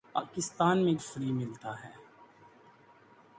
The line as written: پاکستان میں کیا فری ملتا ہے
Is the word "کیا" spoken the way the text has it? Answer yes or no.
no